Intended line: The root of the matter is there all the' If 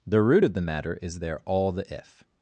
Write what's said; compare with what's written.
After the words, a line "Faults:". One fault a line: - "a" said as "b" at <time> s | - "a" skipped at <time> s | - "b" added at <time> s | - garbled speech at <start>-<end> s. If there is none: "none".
The root of the matter is there all the' If
Faults:
none